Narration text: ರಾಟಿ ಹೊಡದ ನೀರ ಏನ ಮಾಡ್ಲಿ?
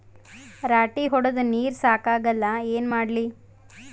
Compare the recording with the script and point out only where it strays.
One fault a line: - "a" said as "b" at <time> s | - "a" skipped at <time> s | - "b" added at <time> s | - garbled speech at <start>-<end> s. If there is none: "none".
- "ಸಾಕಾಗಲ್ಲ" added at 1.8 s